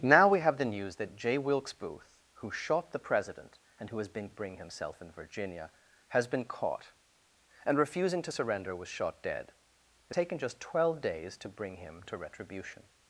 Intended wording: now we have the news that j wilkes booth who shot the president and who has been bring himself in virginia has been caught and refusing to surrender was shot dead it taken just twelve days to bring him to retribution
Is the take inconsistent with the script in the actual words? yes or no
no